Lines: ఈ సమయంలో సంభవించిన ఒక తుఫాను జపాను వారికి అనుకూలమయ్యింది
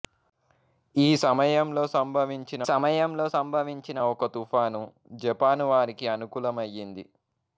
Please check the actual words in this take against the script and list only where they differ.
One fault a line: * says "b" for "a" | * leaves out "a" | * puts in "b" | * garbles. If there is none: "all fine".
* puts in "సమయంలో సంభవించిన"